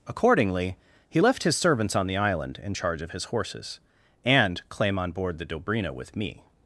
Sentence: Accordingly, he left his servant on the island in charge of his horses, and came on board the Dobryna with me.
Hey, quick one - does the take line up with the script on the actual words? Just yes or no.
no